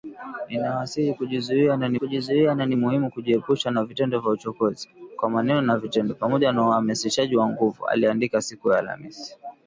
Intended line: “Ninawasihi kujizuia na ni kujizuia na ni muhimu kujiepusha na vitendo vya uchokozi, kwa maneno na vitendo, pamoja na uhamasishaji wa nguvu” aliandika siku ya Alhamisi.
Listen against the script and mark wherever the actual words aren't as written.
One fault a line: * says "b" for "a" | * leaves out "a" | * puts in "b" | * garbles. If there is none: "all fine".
all fine